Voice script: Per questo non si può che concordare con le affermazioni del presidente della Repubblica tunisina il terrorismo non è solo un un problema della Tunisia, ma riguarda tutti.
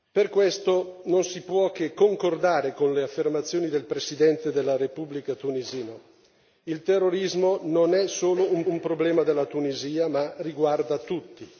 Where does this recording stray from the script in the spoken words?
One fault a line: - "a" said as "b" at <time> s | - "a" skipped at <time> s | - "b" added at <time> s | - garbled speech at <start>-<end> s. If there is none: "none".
none